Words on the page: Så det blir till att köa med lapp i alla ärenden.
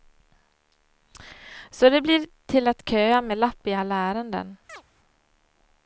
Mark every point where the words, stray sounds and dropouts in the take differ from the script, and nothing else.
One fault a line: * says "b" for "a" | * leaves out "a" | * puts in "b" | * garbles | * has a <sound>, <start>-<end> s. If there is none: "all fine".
* has a chirp, 4.7-4.8 s